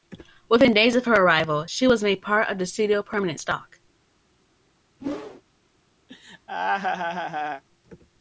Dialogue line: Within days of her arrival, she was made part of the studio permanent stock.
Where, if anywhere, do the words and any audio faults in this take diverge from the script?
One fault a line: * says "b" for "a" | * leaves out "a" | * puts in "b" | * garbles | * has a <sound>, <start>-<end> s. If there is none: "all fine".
* has a whoosh, 5.0-5.4 s
* has a laugh, 6.1-7.6 s